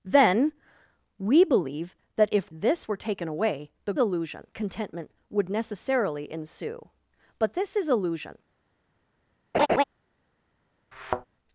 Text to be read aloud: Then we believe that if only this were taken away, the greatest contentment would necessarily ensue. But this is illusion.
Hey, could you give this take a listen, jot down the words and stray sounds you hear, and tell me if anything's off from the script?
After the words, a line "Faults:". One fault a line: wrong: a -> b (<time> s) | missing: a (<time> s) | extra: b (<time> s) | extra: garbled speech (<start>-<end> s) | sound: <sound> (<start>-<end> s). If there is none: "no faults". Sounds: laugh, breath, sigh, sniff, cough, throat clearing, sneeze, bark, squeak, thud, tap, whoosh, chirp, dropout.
Then we believe that if this were taken away, the illusion contentment would necessarily ensue. But this is illusion.
Faults:
missing: only (2.5 s)
wrong: greatest -> illusion (4.0 s)
sound: laugh (9.5-9.8 s)
sound: thud (10.9-11.3 s)